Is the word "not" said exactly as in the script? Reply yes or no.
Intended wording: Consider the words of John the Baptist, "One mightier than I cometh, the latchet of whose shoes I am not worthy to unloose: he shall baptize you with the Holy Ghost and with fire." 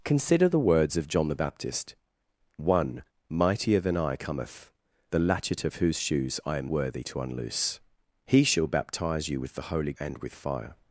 no